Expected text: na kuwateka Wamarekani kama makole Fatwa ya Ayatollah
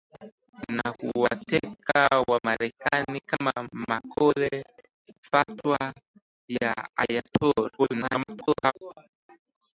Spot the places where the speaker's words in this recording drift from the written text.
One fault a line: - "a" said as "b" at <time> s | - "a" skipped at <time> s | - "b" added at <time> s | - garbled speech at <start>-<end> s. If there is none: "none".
- garbled speech at 7.8-8.7 s